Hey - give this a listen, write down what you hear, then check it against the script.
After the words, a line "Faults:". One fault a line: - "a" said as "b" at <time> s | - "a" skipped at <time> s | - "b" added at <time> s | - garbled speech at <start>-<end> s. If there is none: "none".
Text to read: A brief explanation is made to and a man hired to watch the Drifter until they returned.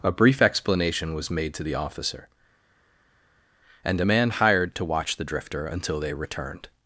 A brief explanation was made to the officer, and a man hired to watch the Drifter until they returned.
Faults:
- "is" said as "was" at 1.1 s
- "the officer" added at 1.6 s